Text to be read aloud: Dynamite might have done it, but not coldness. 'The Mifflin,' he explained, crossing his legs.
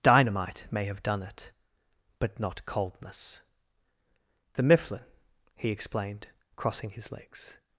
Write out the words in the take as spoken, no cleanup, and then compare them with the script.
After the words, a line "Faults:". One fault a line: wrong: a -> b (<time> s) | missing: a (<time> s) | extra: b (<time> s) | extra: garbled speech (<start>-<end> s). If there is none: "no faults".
Dynamite may have done it, but not coldness. 'The Mifflin,' he explained, crossing his legs.
Faults:
wrong: might -> may (0.7 s)